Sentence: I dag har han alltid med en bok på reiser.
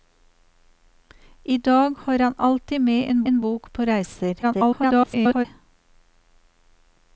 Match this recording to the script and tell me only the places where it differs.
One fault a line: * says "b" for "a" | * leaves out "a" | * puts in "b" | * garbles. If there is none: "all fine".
* puts in "en"
* garbles